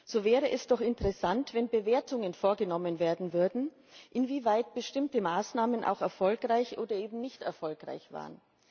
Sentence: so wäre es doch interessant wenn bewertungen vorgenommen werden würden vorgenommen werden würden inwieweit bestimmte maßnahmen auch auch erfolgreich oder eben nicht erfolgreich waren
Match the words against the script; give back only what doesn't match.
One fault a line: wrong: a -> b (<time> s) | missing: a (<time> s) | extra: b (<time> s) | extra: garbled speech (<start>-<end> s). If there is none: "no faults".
missing: vorgenommen werden würden (3.7 s)
missing: auch (6.0 s)